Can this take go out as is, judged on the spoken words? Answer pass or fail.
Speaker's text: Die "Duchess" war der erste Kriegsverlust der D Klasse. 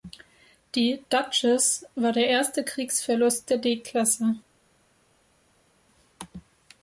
pass